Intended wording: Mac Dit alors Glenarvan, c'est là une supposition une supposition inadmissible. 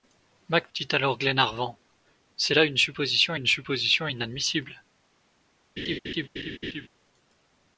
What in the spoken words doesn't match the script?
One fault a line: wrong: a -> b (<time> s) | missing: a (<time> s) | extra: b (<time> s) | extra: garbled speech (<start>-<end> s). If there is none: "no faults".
no faults